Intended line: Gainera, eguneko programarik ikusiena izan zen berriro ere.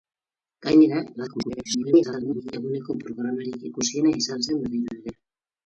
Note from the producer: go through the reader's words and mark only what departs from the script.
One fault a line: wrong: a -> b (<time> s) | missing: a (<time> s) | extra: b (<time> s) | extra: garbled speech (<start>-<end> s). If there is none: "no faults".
extra: garbled speech (1.2-2.5 s)